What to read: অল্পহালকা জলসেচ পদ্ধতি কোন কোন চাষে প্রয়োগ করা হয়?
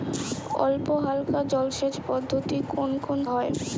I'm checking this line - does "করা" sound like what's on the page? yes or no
no